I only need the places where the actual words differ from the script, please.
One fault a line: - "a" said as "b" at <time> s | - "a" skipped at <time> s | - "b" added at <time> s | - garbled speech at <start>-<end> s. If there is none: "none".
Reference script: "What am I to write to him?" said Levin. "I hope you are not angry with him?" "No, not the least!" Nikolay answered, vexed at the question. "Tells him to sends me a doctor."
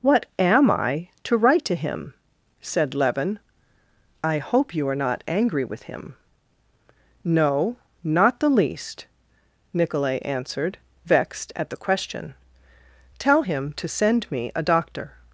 - "Tells" said as "Tell" at 13.2 s
- "sends" said as "send" at 13.9 s